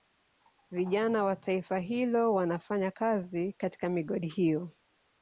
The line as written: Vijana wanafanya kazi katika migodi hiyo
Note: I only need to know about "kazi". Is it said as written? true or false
true